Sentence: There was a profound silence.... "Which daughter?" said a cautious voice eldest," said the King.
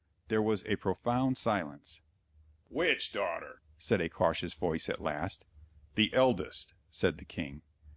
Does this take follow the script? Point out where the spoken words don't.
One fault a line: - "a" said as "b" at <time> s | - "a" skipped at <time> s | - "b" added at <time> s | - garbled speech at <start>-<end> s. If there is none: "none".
- "at last The" added at 4.9 s